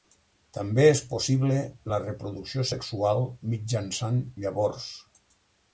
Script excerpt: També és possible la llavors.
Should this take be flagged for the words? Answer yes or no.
yes